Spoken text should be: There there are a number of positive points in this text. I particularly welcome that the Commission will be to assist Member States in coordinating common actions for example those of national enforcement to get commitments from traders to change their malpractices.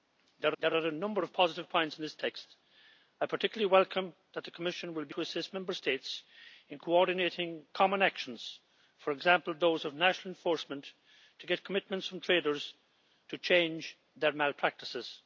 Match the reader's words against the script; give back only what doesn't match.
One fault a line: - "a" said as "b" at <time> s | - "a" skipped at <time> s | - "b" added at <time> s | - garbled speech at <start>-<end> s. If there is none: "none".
none